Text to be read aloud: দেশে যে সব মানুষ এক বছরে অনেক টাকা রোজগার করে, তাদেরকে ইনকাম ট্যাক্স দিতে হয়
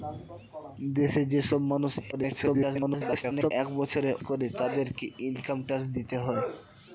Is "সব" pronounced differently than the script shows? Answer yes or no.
no